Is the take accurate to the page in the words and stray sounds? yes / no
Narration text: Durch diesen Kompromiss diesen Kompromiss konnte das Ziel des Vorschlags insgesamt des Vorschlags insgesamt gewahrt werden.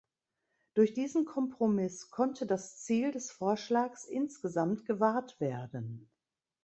no